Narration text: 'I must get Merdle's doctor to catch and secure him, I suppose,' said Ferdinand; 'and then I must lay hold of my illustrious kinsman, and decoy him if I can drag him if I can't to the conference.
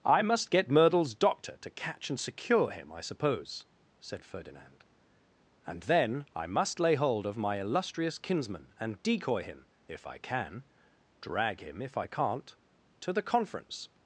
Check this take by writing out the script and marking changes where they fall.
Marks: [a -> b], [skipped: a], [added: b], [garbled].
'I must get Merdle's doctor to catch and secure him, I suppose,' said Ferdinand; 'and then I must lay hold of my illustrious kinsman, and decoy him if I can drag him if I can't to the conference.